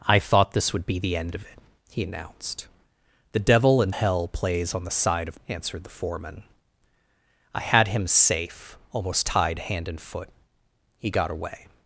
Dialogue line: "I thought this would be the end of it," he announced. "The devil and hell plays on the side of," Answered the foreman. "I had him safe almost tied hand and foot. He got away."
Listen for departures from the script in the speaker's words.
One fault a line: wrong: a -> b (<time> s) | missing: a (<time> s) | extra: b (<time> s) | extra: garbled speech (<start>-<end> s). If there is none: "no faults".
no faults